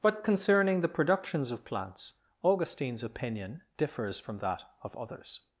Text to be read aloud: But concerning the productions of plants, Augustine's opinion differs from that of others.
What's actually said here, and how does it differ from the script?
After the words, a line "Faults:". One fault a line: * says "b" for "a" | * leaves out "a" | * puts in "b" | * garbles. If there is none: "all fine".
But concerning the productions of plants, Augustine's opinion differs from that of others.
Faults:
all fine